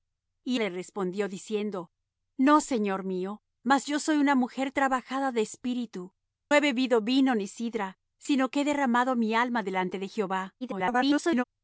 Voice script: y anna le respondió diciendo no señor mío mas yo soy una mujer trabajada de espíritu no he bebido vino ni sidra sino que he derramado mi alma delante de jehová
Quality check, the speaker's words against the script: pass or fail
fail